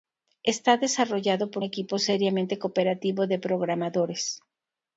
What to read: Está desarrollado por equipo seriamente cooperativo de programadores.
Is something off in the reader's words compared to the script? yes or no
no